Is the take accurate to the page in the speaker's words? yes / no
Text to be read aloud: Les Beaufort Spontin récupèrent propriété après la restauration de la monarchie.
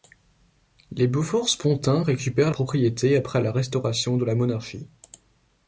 yes